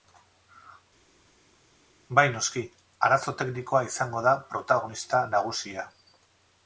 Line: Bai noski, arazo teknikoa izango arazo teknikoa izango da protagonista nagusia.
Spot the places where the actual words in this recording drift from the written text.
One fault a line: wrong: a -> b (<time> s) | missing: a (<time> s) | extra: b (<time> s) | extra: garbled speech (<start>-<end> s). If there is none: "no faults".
missing: arazo teknikoa izango (4.2 s)